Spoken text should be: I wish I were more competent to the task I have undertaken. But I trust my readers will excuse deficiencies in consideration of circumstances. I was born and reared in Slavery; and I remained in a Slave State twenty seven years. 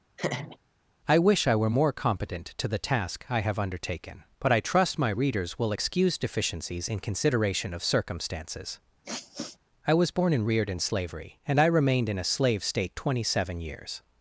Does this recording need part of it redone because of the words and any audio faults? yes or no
yes